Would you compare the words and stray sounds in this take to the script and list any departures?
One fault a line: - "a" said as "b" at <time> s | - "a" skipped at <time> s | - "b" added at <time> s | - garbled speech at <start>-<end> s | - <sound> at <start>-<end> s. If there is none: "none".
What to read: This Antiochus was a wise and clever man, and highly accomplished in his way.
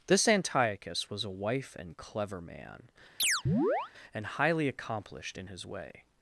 - "wise" said as "wife" at 1.3 s
- chirp at 3.2-3.9 s